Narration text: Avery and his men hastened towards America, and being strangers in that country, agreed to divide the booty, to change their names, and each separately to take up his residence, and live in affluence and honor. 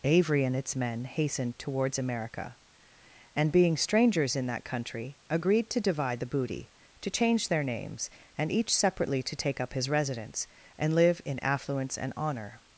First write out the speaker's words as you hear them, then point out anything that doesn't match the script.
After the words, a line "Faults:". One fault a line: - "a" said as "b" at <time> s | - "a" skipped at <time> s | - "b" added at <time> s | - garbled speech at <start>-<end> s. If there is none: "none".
Avery and its men hastened towards America, and being strangers in that country, agreed to divide the booty, to change their names, and each separately to take up his residence, and live in affluence and honor.
Faults:
- "his" said as "its" at 0.6 s